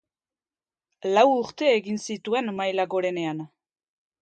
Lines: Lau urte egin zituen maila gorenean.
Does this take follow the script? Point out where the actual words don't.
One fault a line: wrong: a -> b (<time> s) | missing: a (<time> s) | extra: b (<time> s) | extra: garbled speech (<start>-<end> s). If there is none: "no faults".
no faults